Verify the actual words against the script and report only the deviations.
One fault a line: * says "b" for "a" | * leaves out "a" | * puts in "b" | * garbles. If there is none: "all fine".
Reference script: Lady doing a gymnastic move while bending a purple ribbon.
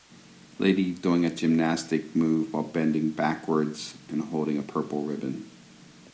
* puts in "backwards and holding"